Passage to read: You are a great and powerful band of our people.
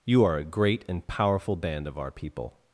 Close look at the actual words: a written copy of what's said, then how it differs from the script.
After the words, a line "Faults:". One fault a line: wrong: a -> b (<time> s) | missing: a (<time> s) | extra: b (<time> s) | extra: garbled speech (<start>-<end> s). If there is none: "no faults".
You are a great and powerful band of our people.
Faults:
no faults